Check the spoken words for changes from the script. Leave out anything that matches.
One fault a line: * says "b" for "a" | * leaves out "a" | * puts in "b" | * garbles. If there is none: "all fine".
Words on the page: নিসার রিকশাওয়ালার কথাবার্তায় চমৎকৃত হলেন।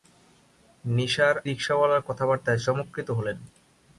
all fine